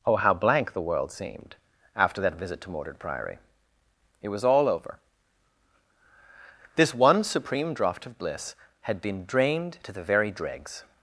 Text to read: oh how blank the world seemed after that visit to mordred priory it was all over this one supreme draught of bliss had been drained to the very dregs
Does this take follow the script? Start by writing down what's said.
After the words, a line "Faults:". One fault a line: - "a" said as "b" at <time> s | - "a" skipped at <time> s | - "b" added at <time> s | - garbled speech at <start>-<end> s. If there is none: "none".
oh how blank the world seemed after that visit to mordred priory it was all over this one supreme draught of bliss had been drained to the very dregs
Faults:
none